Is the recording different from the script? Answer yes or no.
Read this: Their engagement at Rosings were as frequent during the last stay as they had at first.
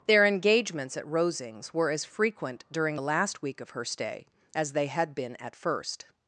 yes